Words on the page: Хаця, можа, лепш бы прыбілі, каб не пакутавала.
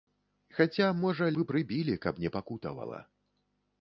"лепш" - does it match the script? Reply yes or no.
no